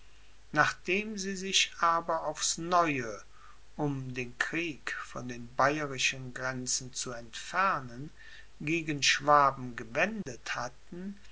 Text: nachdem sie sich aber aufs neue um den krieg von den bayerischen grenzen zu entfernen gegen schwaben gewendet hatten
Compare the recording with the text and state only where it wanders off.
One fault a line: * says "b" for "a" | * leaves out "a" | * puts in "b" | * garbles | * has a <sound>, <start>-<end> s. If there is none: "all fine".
* has a dropout, 10.2-10.3 s